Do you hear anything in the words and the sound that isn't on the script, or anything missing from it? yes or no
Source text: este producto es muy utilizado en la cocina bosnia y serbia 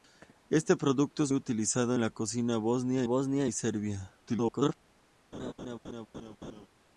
yes